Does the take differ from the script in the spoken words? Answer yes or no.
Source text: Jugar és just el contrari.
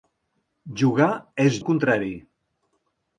yes